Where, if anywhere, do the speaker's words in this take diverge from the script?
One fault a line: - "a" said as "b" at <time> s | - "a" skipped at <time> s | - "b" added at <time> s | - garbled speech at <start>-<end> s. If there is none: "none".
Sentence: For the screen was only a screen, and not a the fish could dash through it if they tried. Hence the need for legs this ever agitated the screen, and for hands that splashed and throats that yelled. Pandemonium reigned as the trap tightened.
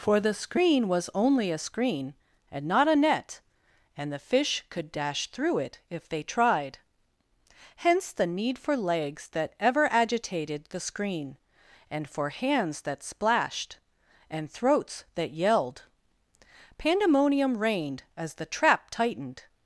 - "net and" added at 3.0 s
- "this" said as "that" at 9.3 s